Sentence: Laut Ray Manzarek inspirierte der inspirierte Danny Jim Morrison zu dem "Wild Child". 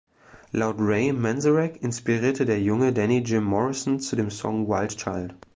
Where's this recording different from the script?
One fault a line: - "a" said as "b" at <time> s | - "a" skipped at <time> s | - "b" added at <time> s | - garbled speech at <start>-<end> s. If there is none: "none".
- "inspirierte" said as "junge" at 2.6 s
- "Song" added at 4.3 s